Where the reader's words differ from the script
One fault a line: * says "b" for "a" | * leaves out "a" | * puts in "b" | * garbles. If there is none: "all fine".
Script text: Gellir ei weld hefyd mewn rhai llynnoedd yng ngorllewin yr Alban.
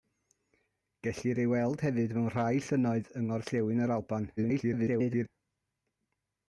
* garbles